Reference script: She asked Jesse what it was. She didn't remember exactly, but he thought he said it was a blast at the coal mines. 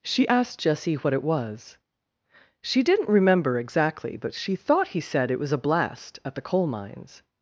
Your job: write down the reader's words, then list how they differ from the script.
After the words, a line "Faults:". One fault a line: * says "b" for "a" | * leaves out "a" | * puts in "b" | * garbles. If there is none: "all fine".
She asked Jesse what it was. She didn't remember exactly, but she thought he said it was a blast at the coal mines.
Faults:
* says "she" for "he"